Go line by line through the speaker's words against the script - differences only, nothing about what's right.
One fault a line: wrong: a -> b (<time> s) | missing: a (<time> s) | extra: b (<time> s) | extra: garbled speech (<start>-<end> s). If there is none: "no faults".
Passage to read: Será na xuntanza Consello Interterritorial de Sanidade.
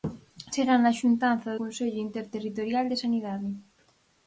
no faults